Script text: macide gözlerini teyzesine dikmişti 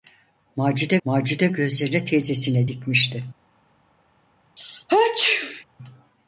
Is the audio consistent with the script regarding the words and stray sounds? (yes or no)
no